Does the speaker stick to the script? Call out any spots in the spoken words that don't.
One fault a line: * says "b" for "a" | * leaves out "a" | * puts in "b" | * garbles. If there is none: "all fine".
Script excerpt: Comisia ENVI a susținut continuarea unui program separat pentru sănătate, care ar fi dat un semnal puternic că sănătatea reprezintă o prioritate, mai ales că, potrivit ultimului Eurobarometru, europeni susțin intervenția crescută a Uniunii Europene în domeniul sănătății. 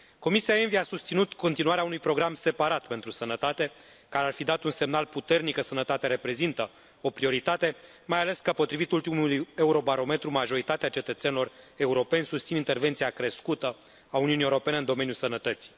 * puts in "majoritatea cetățenilor"